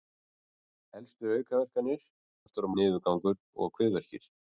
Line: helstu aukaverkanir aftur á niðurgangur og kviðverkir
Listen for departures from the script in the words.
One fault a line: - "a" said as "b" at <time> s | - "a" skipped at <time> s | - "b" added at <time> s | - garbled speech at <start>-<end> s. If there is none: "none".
none